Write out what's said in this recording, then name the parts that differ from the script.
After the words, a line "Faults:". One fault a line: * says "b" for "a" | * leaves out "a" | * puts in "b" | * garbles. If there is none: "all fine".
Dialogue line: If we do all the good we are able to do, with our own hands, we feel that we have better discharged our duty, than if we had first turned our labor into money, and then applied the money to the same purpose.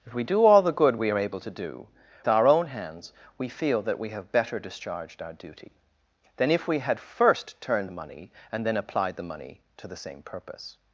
If we do all the good we are able to do, our own hands, we feel that we have better discharged our duty, than if we had first turned money, and then applied the money to the same purpose.
Faults:
* leaves out "with"
* leaves out "our labor into"